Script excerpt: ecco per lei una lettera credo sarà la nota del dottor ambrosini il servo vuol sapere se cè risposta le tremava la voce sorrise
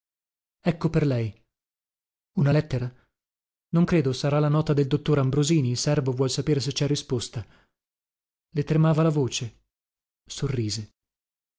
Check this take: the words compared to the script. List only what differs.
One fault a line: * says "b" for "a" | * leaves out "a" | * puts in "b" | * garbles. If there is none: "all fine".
* puts in "non"